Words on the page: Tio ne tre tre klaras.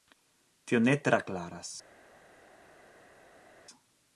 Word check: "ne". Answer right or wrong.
right